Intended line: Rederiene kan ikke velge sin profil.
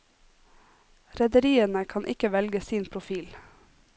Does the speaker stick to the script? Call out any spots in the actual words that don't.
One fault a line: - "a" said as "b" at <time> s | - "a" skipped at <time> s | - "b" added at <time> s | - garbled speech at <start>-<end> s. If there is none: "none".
none